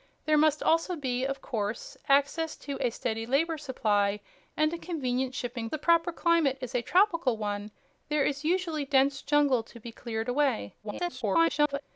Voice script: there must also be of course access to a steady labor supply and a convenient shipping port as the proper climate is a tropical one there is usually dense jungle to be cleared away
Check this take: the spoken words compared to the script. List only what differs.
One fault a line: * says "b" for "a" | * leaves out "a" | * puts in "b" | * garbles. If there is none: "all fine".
* leaves out "port as"
* garbles